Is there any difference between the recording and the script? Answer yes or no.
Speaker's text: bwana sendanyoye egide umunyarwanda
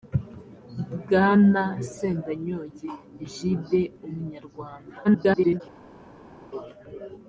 yes